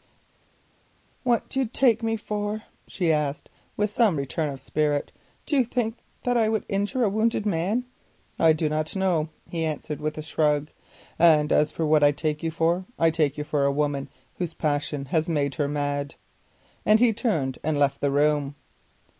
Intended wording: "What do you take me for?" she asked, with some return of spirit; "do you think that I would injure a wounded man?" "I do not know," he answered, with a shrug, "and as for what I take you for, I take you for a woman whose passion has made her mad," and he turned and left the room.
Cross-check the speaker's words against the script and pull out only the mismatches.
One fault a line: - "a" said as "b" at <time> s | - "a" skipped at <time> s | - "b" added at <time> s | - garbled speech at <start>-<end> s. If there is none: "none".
none